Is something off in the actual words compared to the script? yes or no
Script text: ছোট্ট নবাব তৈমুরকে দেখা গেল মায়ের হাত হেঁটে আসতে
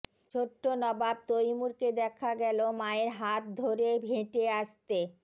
yes